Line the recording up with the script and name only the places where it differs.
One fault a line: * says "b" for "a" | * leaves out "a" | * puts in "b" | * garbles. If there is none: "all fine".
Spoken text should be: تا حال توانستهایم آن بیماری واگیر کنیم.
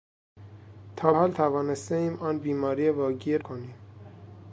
all fine